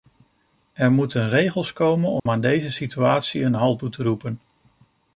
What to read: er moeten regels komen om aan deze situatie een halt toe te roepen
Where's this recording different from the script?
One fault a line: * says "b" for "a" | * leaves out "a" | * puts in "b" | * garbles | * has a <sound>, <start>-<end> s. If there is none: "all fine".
* has a dropout, 2.2-2.3 s